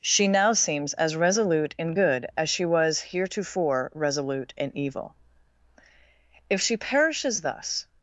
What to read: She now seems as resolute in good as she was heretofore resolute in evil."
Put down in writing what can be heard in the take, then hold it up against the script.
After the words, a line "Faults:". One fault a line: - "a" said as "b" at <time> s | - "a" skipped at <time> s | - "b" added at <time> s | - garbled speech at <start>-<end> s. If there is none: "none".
She now seems as resolute in good as she was heretofore resolute in evil." "If she perishes thus
Faults:
- "If she perishes thus" added at 6.5 s